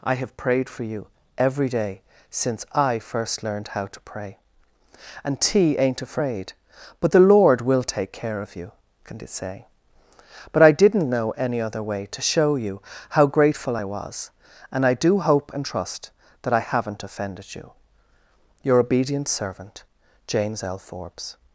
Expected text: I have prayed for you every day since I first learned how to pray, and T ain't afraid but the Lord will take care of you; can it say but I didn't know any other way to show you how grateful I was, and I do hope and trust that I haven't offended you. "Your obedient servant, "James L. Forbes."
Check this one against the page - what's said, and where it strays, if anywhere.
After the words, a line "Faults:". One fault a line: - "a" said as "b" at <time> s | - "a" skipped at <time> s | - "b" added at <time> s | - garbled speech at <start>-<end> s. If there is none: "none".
I have prayed for you every day since I first learned how to pray, and T ain't afraid but the Lord will take care of you; can it say but I didn't know any other way to show you how grateful I was, and I do hope and trust that I haven't offended you. "Your obedient servant, "James L. Forbes."
Faults:
none